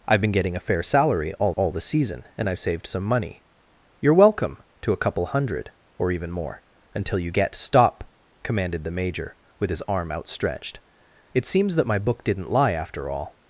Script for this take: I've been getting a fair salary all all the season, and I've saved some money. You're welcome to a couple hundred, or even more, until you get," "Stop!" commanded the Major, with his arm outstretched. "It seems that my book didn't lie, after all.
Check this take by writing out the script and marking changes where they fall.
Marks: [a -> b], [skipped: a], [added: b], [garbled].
I've been getting a fair salary all all the season, and I've saved some money. You're welcome to a couple hundred, or even more, until you get," "Stop!" commanded the Major, with his arm outstretched. "It seems that my book didn't lie, after all.